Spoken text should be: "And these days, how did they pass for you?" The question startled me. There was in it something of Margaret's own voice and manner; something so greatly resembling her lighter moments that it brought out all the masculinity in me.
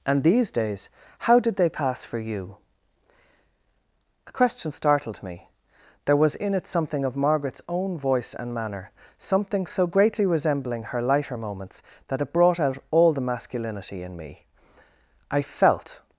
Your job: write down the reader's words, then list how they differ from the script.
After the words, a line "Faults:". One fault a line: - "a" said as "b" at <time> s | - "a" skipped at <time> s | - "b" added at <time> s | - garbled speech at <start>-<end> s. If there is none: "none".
"And these days, how did they pass for you?" The question startled me. There was in it something of Margaret's own voice and manner; something so greatly resembling her lighter moments that it brought out all the masculinity in me. I felt
Faults:
- "I felt" added at 15.3 s